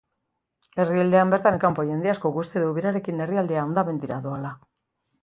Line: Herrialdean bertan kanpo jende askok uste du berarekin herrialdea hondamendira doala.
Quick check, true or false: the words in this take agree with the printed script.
true